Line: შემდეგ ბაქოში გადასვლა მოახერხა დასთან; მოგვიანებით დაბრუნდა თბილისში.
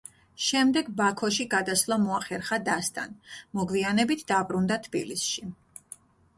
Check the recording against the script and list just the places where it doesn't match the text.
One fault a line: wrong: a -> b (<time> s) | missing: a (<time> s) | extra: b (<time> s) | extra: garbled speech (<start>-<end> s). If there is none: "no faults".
no faults